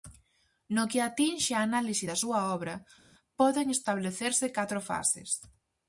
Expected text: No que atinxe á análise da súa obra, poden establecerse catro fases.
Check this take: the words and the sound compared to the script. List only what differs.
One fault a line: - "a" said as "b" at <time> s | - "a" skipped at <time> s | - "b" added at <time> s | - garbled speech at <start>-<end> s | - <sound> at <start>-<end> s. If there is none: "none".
none